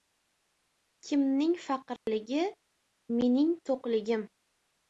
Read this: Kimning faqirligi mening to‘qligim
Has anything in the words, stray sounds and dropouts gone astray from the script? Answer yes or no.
yes